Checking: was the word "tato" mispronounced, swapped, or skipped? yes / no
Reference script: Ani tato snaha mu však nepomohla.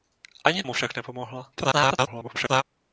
yes